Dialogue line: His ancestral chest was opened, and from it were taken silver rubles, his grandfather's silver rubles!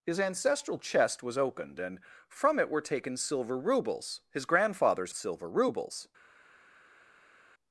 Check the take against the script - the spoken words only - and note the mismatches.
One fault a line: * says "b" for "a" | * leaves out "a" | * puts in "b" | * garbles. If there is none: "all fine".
all fine